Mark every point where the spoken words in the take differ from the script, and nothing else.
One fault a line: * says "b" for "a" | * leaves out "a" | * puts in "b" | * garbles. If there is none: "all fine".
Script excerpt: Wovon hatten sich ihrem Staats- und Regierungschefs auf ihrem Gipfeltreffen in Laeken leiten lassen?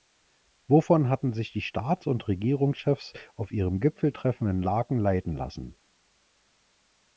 * says "die" for "ihrem"